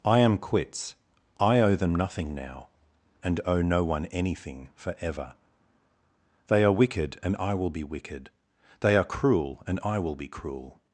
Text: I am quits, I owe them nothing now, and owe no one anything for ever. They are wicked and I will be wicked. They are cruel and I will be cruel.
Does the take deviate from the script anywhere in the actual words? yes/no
no